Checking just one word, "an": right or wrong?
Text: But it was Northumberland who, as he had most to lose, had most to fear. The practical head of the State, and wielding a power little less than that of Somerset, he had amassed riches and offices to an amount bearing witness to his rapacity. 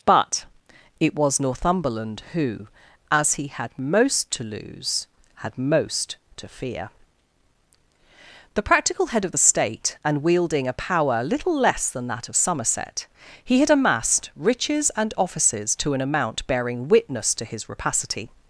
right